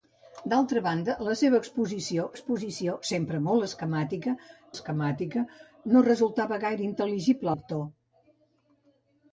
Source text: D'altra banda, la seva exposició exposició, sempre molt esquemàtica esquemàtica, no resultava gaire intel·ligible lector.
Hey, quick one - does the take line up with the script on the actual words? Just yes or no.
yes